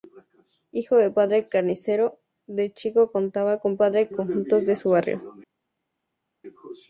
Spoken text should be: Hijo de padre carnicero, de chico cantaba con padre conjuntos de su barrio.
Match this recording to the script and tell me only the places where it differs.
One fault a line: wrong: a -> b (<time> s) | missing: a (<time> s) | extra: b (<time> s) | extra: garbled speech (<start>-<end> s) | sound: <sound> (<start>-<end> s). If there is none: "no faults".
no faults